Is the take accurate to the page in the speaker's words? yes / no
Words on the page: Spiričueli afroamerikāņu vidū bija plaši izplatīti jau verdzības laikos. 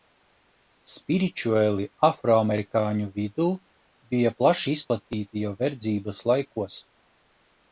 yes